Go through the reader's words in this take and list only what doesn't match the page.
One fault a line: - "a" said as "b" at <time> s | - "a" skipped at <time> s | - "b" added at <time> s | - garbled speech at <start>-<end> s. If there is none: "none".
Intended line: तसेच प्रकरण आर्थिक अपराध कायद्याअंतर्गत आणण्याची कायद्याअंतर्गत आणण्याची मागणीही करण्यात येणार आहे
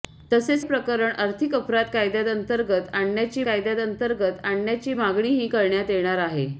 none